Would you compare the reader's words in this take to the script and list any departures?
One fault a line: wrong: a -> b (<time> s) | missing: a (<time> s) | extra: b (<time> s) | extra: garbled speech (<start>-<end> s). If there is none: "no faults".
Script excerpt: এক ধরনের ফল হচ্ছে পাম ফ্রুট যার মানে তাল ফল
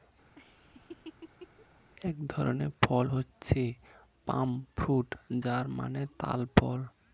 no faults